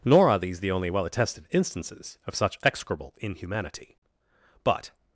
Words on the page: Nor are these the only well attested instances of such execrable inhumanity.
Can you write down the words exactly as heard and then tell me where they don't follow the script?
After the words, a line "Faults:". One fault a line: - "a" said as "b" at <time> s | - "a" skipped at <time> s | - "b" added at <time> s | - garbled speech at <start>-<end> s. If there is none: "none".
Nor are these the only well attested instances of such execrable inhumanity. But
Faults:
- "But" added at 4.6 s